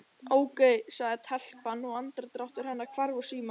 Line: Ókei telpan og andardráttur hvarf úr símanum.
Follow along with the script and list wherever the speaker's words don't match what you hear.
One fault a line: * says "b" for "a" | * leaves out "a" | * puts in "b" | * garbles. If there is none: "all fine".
* puts in "sagði"
* puts in "hennar"